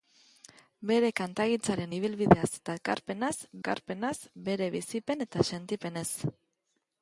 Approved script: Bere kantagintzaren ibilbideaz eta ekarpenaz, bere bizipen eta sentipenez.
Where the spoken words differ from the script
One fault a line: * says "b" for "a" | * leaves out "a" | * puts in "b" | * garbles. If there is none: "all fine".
* puts in "ekarpenaz"